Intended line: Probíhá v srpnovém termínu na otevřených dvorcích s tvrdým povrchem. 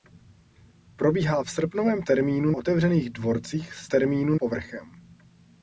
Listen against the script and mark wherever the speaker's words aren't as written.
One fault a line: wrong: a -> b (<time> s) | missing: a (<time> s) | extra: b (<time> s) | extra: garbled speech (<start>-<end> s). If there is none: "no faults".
missing: na (2.5 s)
wrong: tvrdým -> termínu (3.9 s)